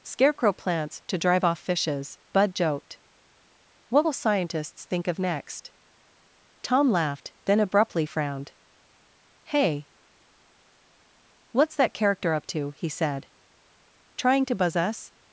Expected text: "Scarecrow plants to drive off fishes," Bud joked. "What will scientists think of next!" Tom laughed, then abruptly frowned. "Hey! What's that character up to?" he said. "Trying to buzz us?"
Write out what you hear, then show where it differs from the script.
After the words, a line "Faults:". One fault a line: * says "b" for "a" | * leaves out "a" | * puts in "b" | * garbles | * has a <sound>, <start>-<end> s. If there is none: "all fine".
"Scarecrow plants to drive off fishes," Bud joked. "What will scientists think of next!" Tom laughed, then abruptly frowned. "Hey! What's that character up to?" he said. "Trying to buzz us?"
Faults:
all fine